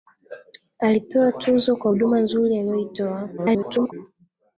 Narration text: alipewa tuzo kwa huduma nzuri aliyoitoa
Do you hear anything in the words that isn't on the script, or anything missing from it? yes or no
yes